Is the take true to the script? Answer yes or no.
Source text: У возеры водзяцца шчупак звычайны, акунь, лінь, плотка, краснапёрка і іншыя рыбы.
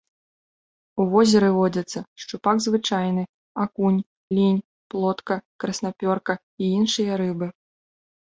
yes